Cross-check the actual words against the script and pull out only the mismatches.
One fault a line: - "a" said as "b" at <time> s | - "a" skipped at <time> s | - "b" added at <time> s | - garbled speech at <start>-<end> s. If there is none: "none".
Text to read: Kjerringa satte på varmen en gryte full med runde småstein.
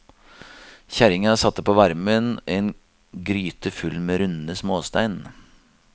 none